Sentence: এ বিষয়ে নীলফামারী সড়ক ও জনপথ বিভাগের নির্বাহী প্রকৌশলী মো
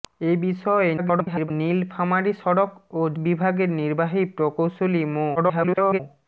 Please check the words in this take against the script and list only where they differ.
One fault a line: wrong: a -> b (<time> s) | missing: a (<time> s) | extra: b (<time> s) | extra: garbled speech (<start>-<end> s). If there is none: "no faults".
extra: garbled speech (1.0-1.5 s)
missing: জনপথ (3.1 s)
extra: garbled speech (5.4-6.0 s)